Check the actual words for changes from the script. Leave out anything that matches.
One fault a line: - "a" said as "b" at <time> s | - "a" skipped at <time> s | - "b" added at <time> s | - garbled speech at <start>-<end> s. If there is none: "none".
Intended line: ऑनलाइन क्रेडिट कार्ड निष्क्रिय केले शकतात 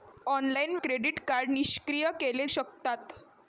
none